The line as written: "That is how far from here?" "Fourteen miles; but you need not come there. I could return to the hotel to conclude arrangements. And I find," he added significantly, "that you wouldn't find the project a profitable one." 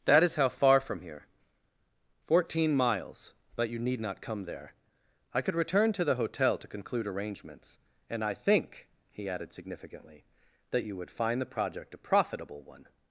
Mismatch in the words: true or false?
true